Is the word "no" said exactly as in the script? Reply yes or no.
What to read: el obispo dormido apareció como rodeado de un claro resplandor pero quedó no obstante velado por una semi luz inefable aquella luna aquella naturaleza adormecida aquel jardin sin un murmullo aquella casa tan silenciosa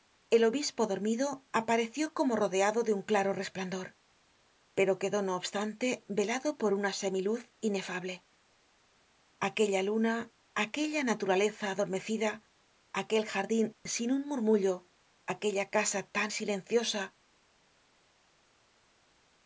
yes